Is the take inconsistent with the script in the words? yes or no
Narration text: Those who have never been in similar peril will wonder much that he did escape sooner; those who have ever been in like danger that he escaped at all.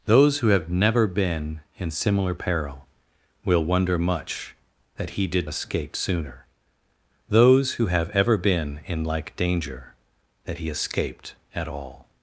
no